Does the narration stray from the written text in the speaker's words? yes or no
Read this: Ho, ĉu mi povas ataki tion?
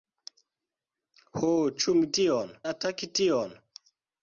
yes